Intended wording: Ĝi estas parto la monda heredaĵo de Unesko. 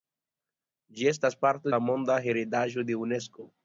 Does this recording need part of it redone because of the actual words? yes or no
no